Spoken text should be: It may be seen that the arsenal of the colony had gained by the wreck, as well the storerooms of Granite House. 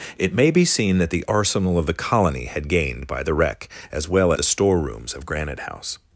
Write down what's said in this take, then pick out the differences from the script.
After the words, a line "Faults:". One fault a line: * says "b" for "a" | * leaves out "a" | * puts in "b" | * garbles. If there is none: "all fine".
It may be seen that the arsenal of the colony had gained by the wreck, as well the storerooms of Granite House.
Faults:
all fine